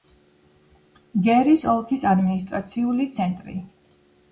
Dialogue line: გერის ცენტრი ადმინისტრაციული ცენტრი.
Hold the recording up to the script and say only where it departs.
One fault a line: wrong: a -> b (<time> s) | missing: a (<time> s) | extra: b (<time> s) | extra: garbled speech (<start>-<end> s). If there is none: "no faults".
wrong: ცენტრი -> ოლქის (1.8 s)